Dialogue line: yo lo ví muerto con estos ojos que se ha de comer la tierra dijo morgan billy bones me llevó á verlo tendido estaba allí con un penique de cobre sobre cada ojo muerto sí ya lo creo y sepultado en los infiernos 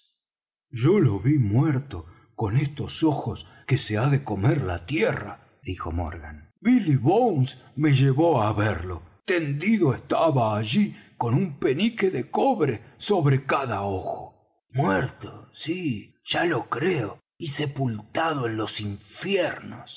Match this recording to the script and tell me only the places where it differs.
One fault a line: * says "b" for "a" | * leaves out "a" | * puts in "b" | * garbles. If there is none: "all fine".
all fine